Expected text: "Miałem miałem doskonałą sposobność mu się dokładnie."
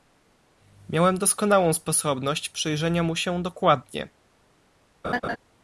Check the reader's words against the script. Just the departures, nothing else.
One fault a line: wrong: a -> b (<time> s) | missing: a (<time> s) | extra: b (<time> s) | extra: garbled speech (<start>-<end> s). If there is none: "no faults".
missing: miałem (1.2 s)
extra: przyjrzenia (2.5 s)